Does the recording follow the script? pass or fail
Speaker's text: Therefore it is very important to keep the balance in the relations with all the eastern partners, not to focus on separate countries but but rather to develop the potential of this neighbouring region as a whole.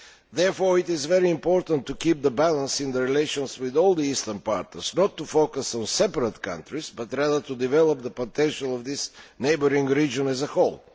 fail